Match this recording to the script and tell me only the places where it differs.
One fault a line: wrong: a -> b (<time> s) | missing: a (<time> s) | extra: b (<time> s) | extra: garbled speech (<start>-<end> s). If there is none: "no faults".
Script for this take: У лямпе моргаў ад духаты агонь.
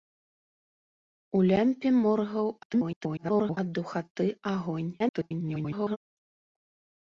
extra: garbled speech (2.6-3.6 s)
extra: garbled speech (5.0-6.0 s)